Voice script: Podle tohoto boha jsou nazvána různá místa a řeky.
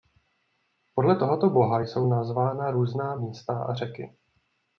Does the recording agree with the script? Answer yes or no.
yes